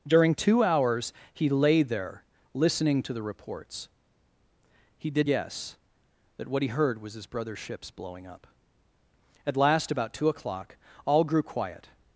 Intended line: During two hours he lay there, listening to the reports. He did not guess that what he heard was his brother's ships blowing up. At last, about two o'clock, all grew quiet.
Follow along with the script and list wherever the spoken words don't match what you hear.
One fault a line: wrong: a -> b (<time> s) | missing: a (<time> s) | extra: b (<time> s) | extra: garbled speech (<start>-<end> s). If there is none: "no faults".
missing: not (5.3 s)